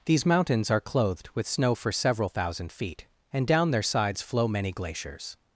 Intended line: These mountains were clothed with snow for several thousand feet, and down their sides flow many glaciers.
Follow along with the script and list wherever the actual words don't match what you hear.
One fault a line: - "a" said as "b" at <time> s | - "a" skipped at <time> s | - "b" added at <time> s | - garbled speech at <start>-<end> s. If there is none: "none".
- "were" said as "are" at 0.7 s